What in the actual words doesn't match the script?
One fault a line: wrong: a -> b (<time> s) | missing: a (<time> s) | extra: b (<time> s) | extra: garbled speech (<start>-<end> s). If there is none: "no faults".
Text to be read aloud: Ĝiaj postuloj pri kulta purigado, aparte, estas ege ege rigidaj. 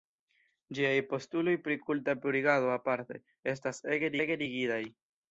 no faults